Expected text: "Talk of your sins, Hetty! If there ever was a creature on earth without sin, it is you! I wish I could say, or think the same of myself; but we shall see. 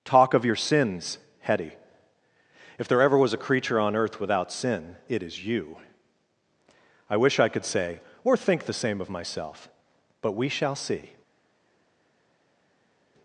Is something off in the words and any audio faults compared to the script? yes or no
no